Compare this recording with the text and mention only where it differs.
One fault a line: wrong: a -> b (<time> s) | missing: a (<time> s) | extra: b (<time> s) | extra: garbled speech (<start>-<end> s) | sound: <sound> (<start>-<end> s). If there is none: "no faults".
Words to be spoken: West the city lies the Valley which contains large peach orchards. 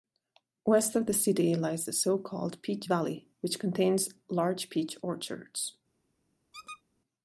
extra: of (0.9 s)
extra: so called Peach (1.9 s)
sound: squeak (6.5-6.8 s)